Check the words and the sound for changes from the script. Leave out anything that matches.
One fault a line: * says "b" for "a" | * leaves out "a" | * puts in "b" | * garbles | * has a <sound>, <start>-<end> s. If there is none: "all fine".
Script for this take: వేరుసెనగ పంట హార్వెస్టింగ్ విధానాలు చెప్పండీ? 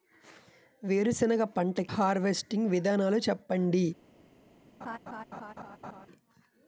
* has a laugh, 4.8-6.1 s